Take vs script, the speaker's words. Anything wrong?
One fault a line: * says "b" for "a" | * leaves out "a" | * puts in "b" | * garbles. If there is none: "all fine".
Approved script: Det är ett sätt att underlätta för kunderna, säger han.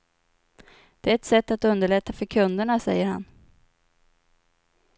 all fine